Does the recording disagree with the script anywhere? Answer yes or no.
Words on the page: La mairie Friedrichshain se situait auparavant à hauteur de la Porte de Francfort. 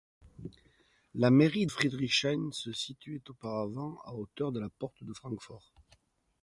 no